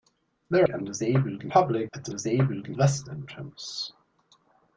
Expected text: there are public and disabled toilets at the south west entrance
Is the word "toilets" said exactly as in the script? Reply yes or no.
no